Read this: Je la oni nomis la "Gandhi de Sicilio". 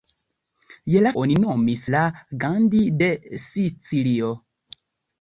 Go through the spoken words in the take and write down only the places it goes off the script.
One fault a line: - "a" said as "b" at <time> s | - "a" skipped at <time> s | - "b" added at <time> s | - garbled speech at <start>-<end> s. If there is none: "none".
none